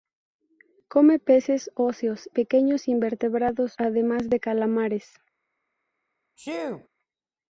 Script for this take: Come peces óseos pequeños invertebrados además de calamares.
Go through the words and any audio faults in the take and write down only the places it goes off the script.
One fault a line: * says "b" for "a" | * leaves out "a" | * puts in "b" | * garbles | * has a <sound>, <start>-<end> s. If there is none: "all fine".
* has a sneeze, 6.4-6.9 s